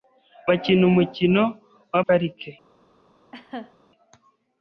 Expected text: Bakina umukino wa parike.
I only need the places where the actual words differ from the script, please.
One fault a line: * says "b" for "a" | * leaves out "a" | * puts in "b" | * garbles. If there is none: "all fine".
all fine